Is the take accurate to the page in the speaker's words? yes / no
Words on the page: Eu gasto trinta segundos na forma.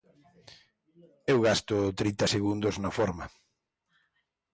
yes